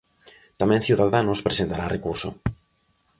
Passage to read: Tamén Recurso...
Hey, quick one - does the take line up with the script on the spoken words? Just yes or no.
no